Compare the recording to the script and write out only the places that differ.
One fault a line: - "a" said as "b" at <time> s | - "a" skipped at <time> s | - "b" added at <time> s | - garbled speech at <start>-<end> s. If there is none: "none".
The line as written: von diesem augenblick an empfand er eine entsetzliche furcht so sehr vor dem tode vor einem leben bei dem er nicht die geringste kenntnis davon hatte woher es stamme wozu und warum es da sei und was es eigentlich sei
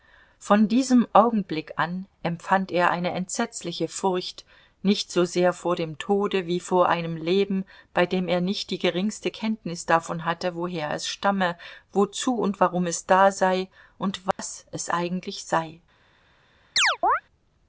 - "nicht" added at 4.8 s
- "wie" added at 6.5 s